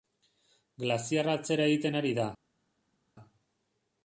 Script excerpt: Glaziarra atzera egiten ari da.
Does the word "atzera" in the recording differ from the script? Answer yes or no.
no